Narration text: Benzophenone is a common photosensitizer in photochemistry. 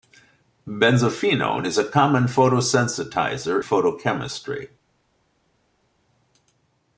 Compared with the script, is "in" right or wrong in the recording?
wrong